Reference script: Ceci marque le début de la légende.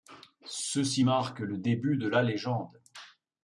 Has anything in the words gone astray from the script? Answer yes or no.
no